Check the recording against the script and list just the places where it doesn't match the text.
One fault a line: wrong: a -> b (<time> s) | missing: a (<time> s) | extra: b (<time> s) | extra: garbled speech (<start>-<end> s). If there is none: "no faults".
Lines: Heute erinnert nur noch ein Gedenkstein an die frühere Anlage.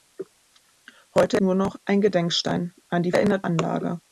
missing: erinnert (1.4 s)
wrong: frühere -> erinnert (3.1 s)